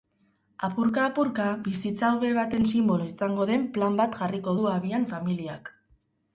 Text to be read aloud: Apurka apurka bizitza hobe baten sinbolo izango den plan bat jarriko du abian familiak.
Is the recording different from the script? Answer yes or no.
no